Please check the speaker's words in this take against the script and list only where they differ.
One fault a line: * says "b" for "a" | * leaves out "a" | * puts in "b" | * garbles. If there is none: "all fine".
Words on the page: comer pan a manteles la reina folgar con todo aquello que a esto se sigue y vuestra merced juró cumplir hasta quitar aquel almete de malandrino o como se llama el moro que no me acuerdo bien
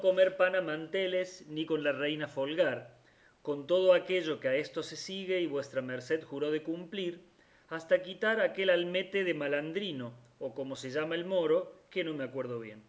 * puts in "ni con"
* puts in "de"